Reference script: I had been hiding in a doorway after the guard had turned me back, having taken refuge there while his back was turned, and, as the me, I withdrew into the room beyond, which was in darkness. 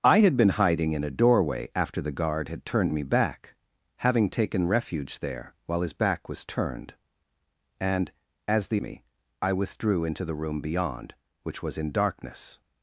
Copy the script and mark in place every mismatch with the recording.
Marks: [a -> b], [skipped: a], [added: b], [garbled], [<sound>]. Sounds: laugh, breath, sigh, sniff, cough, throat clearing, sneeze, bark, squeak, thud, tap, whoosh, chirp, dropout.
I had been hiding in a doorway after the guard had turned me back, having taken refuge there while his back was turned, and, as the me, I withdrew into the room beyond, which was in darkness.